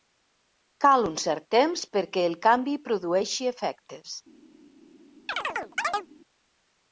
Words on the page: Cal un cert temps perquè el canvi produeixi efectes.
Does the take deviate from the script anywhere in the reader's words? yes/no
no